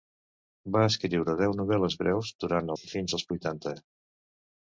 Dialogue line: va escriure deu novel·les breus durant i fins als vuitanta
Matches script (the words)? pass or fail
pass